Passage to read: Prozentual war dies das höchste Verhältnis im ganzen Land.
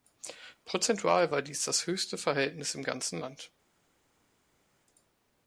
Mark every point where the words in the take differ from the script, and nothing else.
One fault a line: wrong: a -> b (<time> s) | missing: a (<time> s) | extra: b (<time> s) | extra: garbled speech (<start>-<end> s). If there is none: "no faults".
no faults